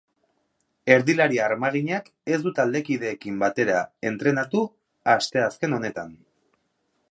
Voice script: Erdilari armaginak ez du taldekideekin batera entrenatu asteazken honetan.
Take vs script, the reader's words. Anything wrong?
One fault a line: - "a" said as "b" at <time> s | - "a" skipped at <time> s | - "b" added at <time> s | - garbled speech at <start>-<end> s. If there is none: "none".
none